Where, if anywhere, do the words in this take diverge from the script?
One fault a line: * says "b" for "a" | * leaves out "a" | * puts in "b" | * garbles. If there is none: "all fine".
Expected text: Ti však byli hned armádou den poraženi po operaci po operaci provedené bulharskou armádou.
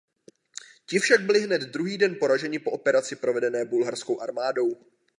* says "druhý" for "armádou"
* leaves out "po operaci"